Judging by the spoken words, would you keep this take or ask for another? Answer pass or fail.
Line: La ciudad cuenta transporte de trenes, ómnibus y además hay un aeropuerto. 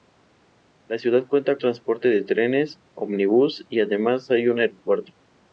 pass